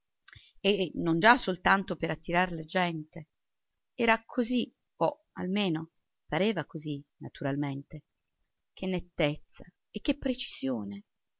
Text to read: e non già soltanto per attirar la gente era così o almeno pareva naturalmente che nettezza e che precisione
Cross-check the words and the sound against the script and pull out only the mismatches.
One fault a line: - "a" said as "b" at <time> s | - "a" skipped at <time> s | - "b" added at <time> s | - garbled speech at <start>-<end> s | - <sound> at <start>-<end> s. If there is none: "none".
- "così" added at 6.6 s